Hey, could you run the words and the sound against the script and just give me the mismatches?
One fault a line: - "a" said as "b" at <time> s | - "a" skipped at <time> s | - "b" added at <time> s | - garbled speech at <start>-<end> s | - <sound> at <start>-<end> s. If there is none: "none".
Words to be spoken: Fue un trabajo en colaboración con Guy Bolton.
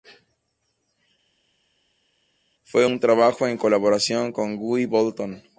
none